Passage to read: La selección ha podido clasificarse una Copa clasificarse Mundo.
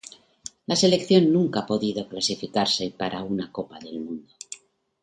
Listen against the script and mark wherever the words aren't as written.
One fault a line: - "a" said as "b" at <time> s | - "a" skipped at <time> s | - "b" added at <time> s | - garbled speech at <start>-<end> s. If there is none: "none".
- "nunca" added at 1.3 s
- "para" added at 2.9 s
- "clasificarse" said as "del" at 3.8 s